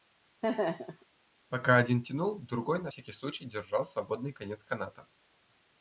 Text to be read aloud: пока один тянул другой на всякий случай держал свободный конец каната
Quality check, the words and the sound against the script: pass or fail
fail